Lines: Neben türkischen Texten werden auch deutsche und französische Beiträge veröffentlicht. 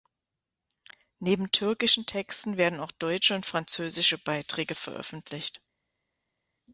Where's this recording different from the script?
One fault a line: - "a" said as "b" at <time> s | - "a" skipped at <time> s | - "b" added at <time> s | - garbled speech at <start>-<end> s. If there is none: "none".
none